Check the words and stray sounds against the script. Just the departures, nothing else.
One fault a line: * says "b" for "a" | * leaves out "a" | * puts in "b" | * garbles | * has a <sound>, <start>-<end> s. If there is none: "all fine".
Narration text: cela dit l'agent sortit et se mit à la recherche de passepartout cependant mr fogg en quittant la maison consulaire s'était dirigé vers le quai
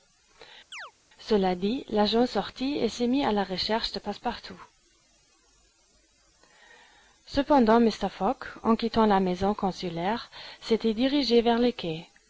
* has a chirp, 0.7-0.9 s